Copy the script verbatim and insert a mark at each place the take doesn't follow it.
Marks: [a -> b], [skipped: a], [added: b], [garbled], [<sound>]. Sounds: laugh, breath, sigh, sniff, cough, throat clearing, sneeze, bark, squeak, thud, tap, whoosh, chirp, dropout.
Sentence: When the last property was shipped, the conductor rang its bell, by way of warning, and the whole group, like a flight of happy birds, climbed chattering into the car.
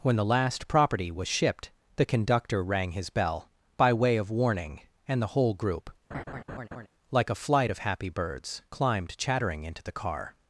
When the last property was shipped, the conductor rang [its -> his] bell, by way of warning, and the whole group, [laugh] like a flight of happy birds, climbed chattering into the car.